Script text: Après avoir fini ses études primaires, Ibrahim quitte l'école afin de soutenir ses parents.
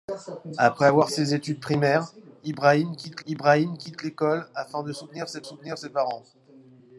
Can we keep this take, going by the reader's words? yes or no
no